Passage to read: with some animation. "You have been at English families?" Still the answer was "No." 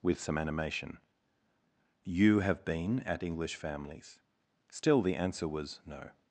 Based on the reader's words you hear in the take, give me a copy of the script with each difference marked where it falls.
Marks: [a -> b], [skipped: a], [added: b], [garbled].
with some animation. "You have been at English families?" Still the answer was "No."